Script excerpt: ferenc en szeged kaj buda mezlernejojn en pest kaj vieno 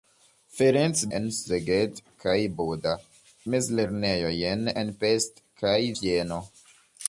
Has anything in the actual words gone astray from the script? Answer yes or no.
no